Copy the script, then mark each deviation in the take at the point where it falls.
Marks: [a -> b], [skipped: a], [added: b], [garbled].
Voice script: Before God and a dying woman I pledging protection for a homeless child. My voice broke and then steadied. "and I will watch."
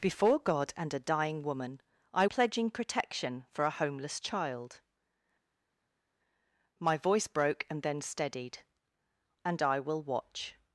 Before God and a dying woman I pledging protection for a homeless child. My voice broke and then steadied. "and I will watch."